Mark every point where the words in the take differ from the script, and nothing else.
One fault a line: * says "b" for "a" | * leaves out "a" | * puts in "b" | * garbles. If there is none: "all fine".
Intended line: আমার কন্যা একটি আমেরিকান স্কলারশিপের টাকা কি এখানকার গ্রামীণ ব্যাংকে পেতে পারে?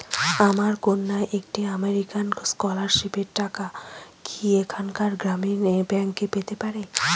all fine